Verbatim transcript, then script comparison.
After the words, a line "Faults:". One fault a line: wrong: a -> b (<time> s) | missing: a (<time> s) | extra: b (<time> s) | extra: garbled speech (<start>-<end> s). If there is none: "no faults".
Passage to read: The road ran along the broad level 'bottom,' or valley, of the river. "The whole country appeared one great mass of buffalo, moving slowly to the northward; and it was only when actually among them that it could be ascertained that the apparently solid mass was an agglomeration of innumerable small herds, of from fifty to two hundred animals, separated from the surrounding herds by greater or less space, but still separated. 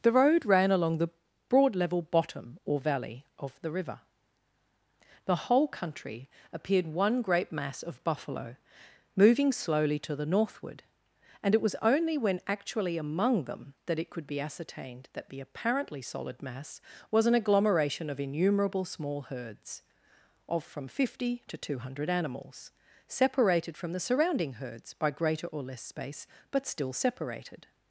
The road ran along the broad level 'bottom,' or valley, of the river. "The whole country appeared one great mass of buffalo, moving slowly to the northward; and it was only when actually among them that it could be ascertained that the apparently solid mass was an agglomeration of innumerable small herds, of from fifty to two hundred animals, separated from the surrounding herds by greater or less space, but still separated.
Faults:
no faults